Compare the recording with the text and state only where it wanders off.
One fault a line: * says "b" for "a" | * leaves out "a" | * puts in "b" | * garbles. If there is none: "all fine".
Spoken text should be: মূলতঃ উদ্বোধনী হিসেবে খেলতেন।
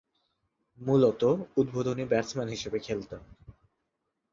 * puts in "ব্যাটসম্যান"